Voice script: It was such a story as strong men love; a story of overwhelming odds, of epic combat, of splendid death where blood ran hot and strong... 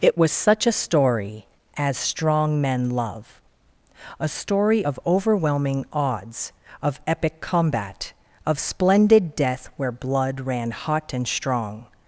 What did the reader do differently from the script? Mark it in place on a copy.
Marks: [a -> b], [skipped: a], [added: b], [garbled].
It was such a story as strong men love; a story of overwhelming odds, of epic combat, of splendid death where blood ran hot and strong...